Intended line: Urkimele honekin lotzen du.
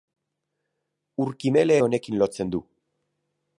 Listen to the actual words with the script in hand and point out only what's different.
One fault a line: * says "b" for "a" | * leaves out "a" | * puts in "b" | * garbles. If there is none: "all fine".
all fine